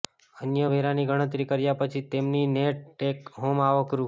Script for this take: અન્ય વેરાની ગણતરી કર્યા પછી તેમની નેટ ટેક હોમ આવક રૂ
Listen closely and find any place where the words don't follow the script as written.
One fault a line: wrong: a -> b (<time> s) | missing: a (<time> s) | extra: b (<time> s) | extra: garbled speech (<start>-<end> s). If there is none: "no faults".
no faults